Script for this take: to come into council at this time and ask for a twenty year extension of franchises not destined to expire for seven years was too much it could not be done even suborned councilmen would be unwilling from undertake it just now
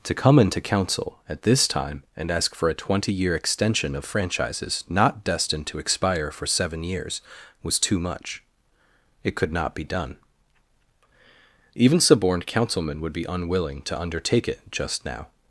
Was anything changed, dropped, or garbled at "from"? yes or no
yes